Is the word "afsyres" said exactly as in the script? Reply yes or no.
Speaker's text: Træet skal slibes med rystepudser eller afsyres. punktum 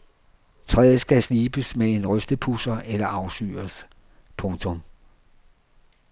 yes